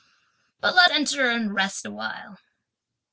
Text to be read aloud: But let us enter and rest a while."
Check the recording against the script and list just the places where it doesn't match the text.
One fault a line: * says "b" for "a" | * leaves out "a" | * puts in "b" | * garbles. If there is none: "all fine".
* leaves out "us"